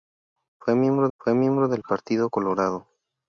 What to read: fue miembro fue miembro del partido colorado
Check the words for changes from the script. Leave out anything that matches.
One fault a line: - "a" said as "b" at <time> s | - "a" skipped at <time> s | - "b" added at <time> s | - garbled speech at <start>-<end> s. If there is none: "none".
none